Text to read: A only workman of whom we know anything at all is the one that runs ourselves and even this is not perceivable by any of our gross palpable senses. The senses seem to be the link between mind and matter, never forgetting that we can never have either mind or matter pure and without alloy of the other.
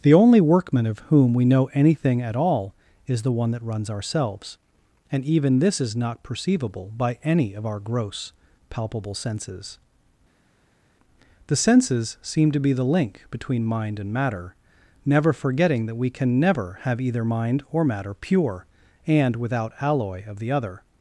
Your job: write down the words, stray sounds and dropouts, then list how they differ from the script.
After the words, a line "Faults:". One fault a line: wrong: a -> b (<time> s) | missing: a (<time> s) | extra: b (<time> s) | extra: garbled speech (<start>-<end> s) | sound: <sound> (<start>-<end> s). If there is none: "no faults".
The only workman of whom we know anything at all is the one that runs ourselves and even this is not perceivable by any of our gross palpable senses. The senses seem to be the link between mind and matter, never forgetting that we can never have either mind or matter pure and without alloy of the other.
Faults:
wrong: A -> The (0.0 s)